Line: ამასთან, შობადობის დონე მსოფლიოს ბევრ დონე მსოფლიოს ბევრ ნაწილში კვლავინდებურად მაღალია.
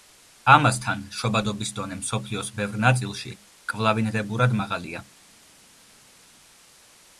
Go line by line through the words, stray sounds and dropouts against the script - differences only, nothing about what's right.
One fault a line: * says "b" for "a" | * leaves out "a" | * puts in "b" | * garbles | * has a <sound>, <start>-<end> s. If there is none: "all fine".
* leaves out "დონე მსოფლიოს ბევრ"